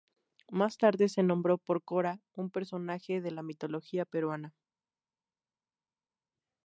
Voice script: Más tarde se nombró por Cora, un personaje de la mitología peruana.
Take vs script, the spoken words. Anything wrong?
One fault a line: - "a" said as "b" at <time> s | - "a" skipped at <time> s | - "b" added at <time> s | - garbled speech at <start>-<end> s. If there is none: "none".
none